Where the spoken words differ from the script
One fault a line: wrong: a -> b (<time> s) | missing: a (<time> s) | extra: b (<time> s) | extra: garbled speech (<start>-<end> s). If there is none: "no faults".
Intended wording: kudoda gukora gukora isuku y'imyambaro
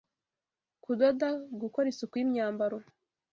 missing: gukora (1.9 s)